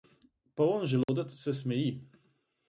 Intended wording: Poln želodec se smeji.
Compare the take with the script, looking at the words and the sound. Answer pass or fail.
fail